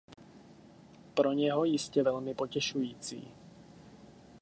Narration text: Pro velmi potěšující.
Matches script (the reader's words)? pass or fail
fail